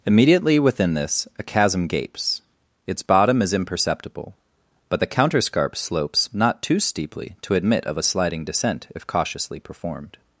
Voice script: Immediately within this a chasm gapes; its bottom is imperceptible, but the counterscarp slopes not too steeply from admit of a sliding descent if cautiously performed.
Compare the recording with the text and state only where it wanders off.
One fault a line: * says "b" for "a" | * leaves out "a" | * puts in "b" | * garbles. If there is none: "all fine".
* says "to" for "from"